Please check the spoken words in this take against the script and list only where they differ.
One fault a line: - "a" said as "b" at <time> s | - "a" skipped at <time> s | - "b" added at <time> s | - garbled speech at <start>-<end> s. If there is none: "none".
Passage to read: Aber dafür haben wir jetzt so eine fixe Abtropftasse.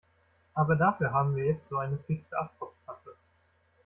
none